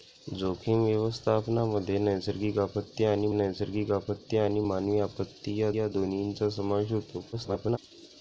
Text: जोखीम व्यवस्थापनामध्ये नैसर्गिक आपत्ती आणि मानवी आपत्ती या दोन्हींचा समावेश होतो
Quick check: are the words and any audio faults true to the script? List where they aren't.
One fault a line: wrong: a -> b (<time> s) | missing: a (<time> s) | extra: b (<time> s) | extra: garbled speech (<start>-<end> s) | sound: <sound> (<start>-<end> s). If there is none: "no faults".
extra: नैसर्गिक आपत्ती आणि (3.3 s)
extra: या (5.8 s)
extra: garbled speech (7.3-7.8 s)